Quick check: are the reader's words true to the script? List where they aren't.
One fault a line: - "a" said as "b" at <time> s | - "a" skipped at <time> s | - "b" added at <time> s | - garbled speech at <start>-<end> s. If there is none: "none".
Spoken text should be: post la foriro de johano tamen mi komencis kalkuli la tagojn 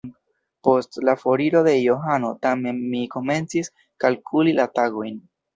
none